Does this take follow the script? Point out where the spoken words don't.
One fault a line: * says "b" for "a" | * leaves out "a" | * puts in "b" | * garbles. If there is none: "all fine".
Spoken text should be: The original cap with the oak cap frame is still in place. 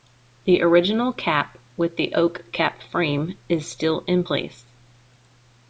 all fine